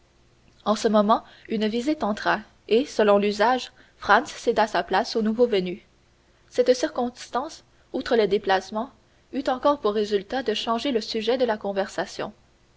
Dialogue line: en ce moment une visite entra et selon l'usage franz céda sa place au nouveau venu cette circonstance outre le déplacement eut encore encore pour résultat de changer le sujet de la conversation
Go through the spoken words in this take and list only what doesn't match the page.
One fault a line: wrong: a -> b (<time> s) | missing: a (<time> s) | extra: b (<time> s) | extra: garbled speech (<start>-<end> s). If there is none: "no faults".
missing: encore (9.8 s)